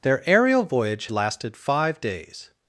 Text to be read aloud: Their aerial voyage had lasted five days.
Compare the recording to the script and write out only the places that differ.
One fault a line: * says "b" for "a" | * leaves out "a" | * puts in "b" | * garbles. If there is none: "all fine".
* leaves out "had"